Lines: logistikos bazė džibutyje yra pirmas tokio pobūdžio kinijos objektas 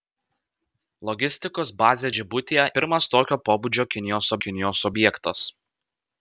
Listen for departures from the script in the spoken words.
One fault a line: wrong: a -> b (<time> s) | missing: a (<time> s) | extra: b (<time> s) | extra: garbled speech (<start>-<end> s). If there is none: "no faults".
missing: yra (2.7 s)
extra: kinijos (4.5 s)